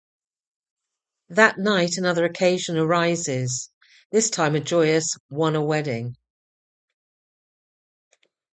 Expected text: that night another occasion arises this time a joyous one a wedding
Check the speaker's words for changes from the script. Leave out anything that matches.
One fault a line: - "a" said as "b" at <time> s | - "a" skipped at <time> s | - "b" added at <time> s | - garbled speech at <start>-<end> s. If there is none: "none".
none